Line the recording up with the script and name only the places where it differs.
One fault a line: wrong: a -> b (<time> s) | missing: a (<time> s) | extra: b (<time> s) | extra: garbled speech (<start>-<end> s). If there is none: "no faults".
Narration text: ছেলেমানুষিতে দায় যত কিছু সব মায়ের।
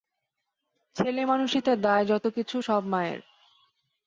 no faults